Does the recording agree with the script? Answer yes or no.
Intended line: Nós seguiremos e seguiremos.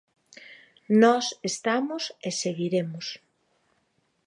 no